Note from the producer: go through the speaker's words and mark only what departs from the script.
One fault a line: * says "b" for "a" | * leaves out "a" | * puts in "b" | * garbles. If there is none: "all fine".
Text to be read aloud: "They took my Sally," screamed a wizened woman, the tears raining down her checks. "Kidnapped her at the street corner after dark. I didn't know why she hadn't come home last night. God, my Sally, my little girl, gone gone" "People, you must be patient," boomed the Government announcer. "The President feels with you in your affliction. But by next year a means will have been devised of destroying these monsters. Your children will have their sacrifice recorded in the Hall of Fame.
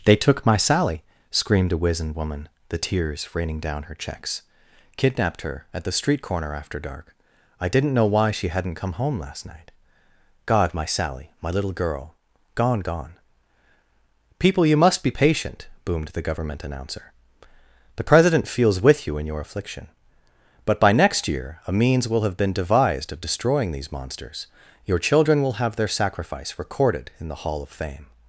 all fine